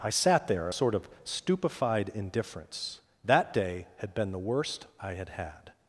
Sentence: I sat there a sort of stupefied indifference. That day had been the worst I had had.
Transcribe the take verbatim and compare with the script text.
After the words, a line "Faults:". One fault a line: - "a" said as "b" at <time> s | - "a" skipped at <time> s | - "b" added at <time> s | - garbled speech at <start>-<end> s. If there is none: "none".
I sat there a sort of stupefied indifference. That day had been the worst I had had.
Faults:
none